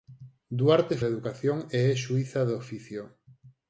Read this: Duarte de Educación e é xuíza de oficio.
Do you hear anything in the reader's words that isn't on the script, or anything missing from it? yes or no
no